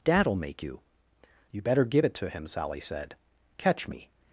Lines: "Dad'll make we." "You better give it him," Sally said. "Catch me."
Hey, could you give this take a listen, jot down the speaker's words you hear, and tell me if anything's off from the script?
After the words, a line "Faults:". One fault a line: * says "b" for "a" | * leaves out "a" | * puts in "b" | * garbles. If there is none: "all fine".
"Dad'll make you." "You better give it to him," Sally said. "Catch me."
Faults:
* says "you" for "we"
* puts in "to"